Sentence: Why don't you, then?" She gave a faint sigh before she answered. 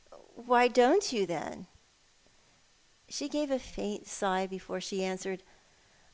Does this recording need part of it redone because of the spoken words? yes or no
no